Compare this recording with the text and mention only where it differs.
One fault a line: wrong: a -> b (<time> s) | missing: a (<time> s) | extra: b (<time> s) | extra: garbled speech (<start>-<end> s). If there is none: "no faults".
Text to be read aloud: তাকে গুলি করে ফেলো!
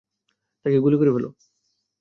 no faults